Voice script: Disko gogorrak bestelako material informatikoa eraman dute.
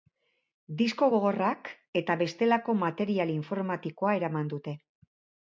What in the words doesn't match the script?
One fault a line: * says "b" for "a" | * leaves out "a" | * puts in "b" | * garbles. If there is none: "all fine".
* puts in "eta"